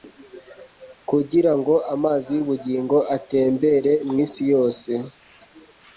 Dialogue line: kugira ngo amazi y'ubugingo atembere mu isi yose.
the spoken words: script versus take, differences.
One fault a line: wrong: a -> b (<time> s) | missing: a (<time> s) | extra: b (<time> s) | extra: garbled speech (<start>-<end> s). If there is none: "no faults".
no faults